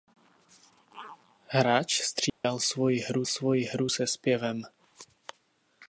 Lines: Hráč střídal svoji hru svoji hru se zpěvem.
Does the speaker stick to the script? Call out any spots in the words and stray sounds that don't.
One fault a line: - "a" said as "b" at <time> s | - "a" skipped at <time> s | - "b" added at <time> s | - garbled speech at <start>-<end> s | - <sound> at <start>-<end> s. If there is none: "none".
- dropout at 2.3-2.4 s